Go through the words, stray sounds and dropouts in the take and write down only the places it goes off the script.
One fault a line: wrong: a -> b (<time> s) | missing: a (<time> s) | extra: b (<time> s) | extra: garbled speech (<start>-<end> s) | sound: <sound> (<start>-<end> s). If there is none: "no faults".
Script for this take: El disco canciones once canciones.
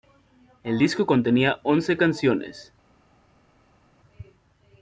wrong: canciones -> contenía (1.1 s)